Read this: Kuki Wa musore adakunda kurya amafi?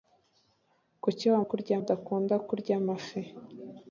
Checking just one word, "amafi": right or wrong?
right